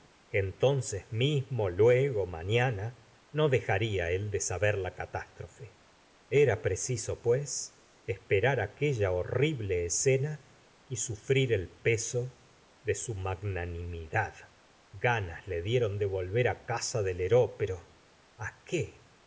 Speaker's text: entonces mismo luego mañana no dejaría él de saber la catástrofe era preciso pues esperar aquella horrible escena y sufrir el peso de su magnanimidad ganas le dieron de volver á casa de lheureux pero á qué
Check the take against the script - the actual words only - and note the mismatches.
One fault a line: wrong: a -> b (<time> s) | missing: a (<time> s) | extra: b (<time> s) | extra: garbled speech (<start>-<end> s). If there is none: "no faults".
no faults